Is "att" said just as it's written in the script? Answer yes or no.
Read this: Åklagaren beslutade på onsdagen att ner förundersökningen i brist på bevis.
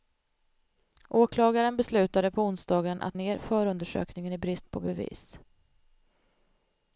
yes